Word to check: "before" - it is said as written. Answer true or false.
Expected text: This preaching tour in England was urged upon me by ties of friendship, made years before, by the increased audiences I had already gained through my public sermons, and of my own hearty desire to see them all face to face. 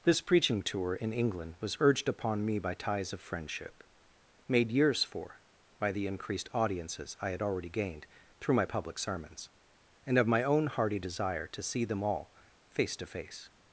false